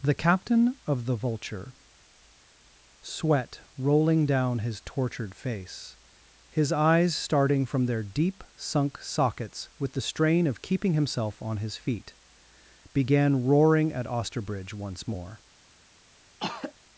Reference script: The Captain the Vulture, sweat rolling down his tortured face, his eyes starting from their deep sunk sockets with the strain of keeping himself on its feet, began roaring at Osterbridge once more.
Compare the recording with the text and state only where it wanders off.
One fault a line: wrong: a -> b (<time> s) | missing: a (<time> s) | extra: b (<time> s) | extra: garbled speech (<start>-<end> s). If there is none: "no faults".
extra: of (0.9 s)
wrong: its -> his (11.6 s)